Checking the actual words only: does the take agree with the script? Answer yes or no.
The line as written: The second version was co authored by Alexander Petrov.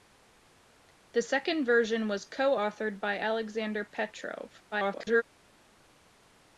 no